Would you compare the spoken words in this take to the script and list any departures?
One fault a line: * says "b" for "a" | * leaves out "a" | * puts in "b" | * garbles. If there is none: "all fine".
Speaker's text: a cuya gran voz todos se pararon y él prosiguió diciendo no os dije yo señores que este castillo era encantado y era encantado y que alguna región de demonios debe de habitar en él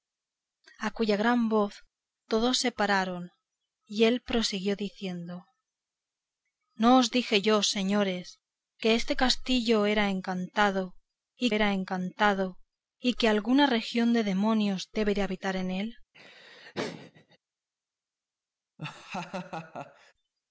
all fine